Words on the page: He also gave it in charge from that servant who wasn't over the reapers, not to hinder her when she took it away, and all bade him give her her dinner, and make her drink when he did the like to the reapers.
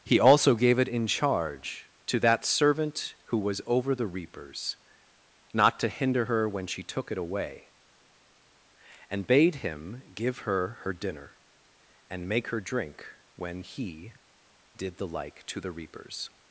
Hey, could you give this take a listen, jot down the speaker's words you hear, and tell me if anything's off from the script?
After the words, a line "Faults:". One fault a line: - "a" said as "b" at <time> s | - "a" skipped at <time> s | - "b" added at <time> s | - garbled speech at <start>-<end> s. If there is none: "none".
He also gave it in charge to that servant who was over the reapers, not to hinder her when she took it away, and bade him give her her dinner, and make her drink when he did the like to the reapers.
Faults:
- "from" said as "to" at 2.1 s
- "wasn't" said as "was" at 3.4 s
- "all" skipped at 9.3 s